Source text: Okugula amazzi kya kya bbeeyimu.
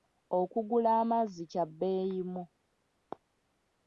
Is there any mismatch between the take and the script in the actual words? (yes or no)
yes